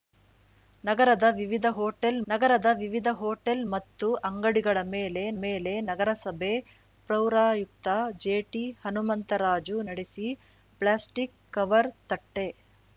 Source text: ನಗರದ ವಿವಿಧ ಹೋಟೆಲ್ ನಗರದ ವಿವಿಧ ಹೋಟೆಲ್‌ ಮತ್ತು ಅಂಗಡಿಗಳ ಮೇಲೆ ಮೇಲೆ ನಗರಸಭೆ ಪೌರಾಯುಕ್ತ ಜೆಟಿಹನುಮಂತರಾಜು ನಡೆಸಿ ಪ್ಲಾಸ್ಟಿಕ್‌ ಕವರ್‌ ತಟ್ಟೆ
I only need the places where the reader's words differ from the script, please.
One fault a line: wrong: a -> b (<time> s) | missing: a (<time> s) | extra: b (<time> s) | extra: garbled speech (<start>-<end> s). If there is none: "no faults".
no faults